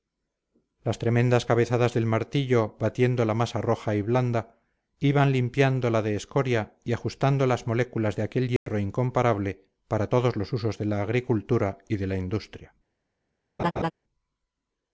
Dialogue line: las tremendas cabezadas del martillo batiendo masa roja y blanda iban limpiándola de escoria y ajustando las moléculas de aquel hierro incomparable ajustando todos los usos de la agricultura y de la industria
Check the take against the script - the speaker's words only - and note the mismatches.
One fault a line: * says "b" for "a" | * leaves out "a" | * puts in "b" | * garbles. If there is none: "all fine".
* puts in "la"
* says "para" for "ajustando"